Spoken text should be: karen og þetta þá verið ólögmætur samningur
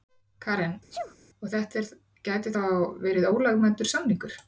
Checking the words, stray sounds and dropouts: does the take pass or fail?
fail